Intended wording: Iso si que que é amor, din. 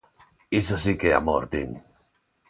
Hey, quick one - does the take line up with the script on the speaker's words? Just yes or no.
no